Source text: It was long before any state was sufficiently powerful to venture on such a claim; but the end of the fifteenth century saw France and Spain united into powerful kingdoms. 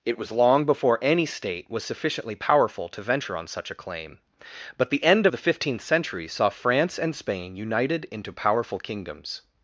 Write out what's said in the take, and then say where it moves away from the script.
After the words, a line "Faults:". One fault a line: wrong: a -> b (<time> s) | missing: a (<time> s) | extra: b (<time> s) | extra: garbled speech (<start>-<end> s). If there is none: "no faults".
It was long before any state was sufficiently powerful to venture on such a claim; but the end the fifteenth century saw France and Spain united into powerful kingdoms.
Faults:
missing: of (5.3 s)